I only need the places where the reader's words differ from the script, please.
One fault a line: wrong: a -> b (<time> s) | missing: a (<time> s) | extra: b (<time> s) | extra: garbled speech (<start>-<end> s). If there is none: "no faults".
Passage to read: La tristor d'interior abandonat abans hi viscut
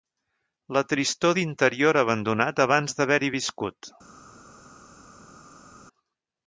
extra: d'haver (3.0 s)